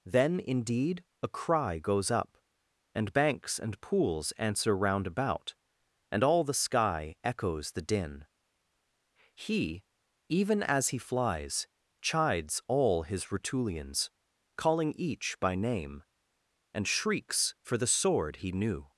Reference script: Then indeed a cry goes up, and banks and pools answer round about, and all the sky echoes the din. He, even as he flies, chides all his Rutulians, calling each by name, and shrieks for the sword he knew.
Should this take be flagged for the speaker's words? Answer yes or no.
no